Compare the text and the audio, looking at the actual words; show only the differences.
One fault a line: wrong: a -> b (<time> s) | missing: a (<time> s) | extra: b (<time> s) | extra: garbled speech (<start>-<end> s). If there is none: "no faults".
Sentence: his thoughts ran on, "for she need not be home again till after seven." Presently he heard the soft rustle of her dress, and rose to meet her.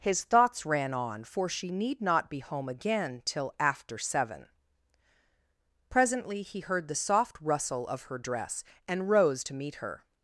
no faults